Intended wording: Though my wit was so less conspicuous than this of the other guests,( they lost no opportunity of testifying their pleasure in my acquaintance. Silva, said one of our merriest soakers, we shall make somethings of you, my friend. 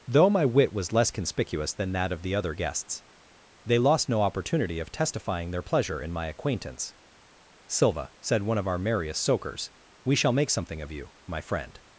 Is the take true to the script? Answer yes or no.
no